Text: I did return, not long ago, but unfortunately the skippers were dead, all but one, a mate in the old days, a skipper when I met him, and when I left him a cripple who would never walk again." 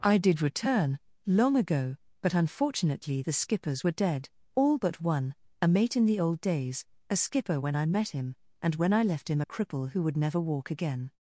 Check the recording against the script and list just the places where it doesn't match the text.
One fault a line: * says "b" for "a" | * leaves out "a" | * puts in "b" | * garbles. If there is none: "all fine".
* leaves out "not"